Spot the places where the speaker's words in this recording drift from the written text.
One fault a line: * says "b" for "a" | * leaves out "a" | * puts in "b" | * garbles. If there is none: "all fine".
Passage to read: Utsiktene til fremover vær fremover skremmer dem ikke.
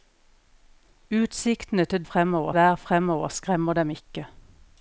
all fine